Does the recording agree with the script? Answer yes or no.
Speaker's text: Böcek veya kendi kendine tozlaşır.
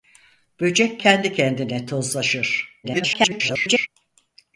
no